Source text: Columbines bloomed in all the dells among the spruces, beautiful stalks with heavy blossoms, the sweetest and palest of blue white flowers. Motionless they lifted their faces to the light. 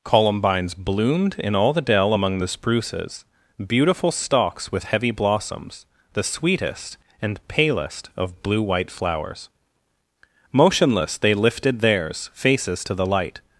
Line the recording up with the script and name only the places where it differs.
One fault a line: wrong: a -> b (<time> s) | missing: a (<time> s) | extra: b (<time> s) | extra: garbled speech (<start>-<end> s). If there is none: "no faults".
wrong: dells -> dell (1.8 s)
wrong: their -> theirs (11.8 s)